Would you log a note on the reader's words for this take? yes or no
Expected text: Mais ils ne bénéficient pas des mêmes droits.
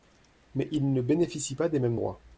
no